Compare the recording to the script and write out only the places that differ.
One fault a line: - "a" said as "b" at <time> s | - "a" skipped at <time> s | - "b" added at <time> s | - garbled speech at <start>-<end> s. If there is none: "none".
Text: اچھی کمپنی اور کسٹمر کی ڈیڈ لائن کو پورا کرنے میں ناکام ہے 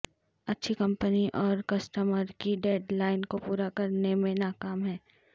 none